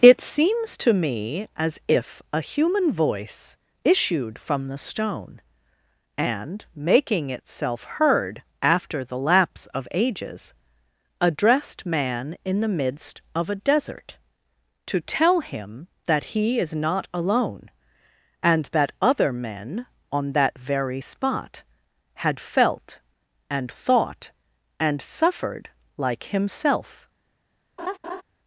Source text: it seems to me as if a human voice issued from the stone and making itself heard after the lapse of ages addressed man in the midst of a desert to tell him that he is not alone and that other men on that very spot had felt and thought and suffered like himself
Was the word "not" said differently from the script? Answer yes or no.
no